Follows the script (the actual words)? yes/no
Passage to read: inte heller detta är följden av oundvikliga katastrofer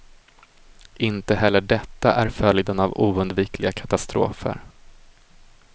yes